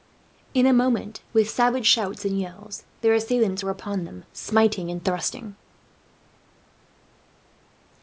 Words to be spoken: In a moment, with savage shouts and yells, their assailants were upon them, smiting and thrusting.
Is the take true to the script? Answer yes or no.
yes